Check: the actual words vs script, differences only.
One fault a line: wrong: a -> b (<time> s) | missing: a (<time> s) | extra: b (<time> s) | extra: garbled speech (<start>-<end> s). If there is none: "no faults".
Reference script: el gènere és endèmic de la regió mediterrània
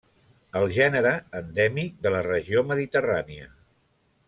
missing: és (1.1 s)